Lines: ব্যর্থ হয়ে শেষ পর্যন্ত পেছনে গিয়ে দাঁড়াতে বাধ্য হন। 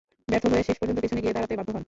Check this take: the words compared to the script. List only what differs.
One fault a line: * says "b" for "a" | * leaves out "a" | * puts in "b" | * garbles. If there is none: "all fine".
all fine